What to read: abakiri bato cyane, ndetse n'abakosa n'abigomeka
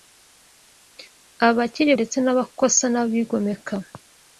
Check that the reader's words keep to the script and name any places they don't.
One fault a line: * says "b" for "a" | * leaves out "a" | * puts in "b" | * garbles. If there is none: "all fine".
* leaves out "bato cyane"